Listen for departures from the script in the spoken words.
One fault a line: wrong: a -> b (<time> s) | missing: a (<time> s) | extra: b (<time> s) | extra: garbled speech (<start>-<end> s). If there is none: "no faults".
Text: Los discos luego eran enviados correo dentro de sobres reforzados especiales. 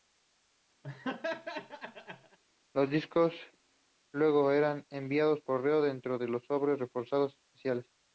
no faults